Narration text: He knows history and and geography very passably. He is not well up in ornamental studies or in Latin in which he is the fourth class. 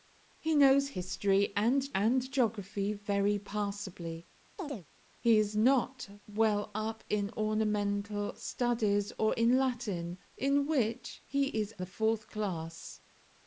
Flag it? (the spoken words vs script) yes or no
no